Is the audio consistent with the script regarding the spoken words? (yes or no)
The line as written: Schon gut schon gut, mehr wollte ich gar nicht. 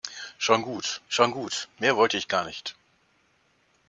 yes